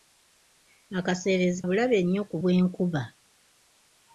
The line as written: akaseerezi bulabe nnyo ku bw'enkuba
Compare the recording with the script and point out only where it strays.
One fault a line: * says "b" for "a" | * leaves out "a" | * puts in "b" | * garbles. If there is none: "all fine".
all fine